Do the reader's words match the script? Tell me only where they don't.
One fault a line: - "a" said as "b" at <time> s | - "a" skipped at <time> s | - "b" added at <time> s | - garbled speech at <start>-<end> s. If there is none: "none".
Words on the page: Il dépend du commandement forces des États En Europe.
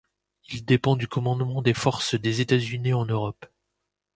- "des" added at 1.6 s
- "Unis" added at 2.6 s